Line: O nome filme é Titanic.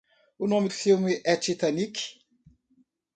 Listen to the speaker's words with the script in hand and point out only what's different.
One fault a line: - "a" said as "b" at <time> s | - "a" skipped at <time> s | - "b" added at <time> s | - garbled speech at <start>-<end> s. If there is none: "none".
none